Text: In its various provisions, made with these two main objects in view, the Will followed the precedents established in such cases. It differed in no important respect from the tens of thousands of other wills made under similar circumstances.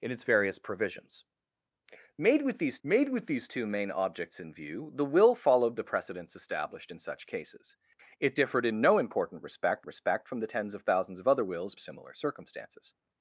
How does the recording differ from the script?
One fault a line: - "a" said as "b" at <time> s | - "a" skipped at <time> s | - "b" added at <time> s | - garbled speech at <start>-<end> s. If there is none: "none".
- "made with these" added at 2.8 s
- "respect" added at 9.9 s
- "made under" skipped at 11.8 s